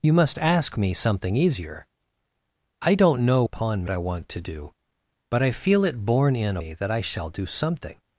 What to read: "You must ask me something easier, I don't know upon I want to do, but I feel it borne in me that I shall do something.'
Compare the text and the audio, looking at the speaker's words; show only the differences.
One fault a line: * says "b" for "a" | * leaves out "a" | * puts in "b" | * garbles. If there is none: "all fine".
all fine